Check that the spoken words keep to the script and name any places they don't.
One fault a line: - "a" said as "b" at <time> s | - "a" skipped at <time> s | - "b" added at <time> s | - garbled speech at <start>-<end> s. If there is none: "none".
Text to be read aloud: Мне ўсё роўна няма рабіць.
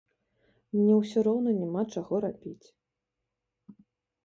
- "чаго" added at 2.0 s